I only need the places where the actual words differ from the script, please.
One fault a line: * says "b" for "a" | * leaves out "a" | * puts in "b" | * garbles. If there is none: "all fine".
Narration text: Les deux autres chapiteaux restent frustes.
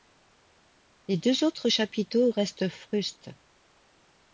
all fine